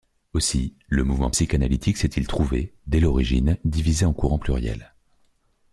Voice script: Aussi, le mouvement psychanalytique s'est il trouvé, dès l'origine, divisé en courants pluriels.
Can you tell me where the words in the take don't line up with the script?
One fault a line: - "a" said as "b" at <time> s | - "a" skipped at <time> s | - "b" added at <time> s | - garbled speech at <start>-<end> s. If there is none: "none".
none